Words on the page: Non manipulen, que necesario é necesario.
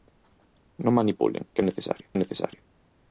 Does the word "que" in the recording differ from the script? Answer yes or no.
no